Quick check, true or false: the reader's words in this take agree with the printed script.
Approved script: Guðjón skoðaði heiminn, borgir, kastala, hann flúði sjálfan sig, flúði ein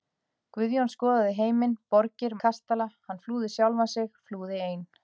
true